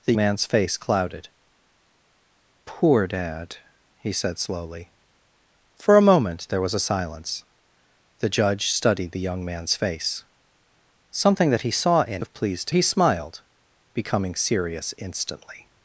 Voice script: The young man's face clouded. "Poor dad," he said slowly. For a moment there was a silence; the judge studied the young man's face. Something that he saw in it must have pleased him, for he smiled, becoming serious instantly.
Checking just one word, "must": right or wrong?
wrong